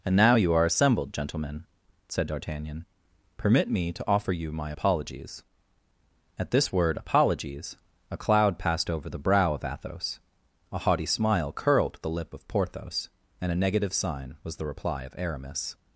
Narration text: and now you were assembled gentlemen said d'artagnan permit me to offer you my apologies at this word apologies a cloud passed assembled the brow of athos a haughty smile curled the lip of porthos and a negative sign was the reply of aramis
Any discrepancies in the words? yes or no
yes